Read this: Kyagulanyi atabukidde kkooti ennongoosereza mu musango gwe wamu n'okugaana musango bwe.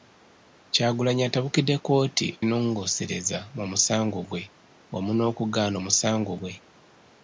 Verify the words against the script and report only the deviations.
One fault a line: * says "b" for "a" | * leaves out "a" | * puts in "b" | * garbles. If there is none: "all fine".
all fine